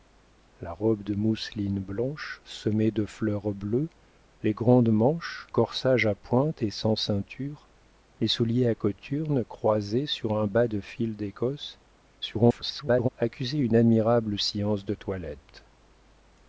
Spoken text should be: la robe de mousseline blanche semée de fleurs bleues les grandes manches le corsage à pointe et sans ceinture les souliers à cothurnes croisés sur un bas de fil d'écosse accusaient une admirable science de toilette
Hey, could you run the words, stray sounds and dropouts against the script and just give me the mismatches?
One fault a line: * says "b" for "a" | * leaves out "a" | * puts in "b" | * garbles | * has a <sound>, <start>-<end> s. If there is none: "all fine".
* leaves out "le"
* garbles